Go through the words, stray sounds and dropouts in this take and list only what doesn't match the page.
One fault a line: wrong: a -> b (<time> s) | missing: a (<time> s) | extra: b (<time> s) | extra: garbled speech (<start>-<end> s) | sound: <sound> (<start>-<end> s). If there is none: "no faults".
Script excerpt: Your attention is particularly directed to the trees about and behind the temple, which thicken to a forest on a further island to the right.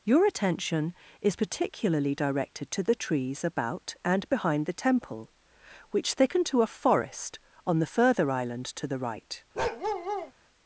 wrong: a -> the (7.8 s)
sound: bark (9.5-10.3 s)